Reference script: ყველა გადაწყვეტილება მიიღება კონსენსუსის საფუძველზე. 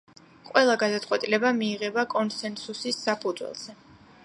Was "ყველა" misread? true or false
false